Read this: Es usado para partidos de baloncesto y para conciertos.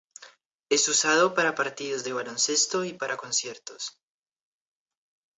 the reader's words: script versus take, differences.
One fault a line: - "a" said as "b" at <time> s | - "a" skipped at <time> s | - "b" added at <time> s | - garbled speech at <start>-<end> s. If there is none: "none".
none